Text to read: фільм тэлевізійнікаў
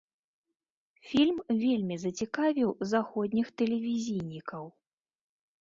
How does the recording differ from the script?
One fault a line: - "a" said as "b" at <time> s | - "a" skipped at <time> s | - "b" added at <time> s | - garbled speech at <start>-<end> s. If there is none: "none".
- "вельмі зацікавіў заходніх" added at 1.6 s